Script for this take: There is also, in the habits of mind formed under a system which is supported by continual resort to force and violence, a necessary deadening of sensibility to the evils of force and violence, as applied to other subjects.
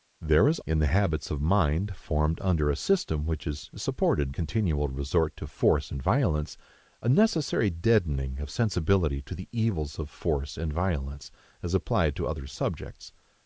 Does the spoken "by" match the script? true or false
false